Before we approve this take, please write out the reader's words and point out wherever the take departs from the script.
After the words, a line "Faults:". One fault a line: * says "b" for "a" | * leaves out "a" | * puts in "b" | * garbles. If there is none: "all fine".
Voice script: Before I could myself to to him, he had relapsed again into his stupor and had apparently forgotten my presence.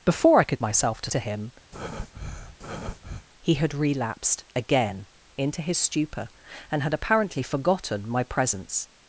Before I could myself to to him, he had relapsed again into his stupor and had apparently forgotten my presence.
Faults:
all fine